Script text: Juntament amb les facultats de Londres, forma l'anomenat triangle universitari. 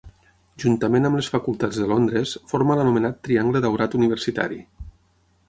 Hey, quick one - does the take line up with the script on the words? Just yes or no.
no